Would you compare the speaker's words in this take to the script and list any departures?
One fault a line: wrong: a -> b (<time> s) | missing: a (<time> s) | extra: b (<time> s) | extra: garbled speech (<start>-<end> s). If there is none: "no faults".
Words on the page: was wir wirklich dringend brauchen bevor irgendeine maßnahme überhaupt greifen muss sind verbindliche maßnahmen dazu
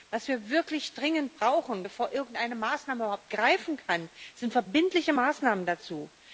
wrong: muss -> kann (3.8 s)